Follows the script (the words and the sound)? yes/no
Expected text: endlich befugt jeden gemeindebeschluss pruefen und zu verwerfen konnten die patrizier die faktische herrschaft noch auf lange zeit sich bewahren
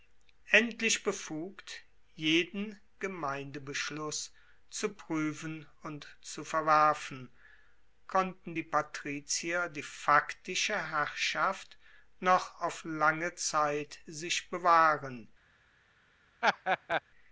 no